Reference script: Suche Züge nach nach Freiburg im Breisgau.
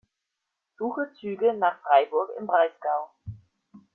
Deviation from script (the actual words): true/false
true